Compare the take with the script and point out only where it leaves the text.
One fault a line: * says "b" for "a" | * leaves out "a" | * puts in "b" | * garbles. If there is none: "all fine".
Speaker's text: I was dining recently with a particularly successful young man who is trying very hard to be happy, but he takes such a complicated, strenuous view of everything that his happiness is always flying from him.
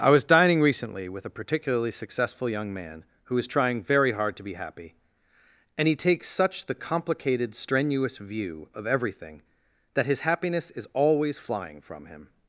* says "and" for "but"
* says "the" for "a"